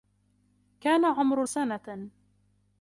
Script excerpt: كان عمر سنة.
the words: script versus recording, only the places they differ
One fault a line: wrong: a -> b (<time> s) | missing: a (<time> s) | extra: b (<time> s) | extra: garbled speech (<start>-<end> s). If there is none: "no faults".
no faults